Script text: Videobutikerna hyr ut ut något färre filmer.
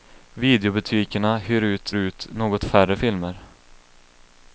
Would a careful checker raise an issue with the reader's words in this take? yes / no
no